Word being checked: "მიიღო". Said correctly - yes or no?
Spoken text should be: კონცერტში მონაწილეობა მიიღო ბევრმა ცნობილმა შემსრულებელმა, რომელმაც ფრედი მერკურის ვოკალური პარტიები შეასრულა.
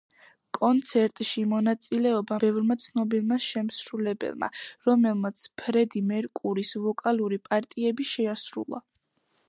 no